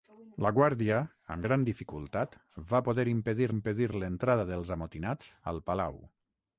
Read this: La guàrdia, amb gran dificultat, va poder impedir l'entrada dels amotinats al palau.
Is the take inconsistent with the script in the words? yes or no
yes